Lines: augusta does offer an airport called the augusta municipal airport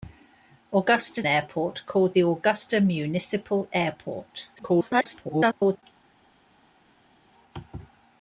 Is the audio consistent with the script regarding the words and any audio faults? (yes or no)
no